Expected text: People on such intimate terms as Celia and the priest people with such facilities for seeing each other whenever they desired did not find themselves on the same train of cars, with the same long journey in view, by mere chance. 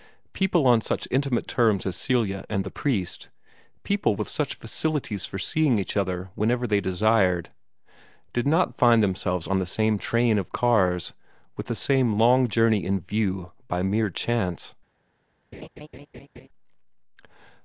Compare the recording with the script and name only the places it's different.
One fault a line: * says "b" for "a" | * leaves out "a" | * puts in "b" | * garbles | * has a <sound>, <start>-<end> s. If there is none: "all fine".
* has a laugh, 15.5-16.5 s